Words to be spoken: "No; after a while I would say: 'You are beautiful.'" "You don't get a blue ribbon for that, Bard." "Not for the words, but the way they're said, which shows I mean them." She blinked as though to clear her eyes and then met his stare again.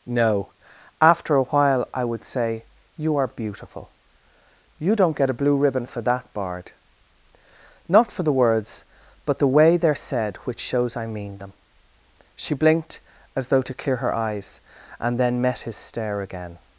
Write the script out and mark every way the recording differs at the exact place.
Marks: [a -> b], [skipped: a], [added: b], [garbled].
"No; after a while I would say: 'You are beautiful.'" "You don't get a blue ribbon for that, Bard." "Not for the words, but the way they're said, which shows I mean them." She blinked as though to clear her eyes and then met his stare again.